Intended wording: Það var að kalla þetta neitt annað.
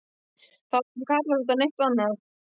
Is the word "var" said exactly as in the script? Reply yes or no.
yes